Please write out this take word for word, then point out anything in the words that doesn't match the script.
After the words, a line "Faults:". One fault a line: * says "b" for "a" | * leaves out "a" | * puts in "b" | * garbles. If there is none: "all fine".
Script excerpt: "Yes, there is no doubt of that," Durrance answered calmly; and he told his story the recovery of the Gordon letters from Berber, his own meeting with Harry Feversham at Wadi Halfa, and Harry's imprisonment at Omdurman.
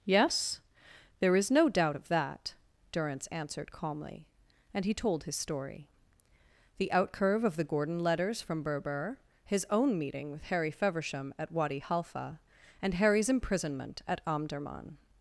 "Yes, there is no doubt of that," Durrance answered calmly; and he told his story the outcurve of the Gordon letters from Berber, his own meeting with Harry Feversham at Wadi Halfa, and Harry's imprisonment at Omdurman.
Faults:
* says "outcurve" for "recovery"